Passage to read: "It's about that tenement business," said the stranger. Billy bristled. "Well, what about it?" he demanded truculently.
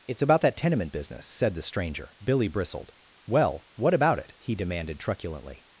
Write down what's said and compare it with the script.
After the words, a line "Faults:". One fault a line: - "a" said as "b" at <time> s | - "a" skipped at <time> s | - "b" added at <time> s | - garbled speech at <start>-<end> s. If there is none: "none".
"It's about that tenement business," said the stranger. Billy bristled. "Well, what about it?" he demanded truculently.
Faults:
none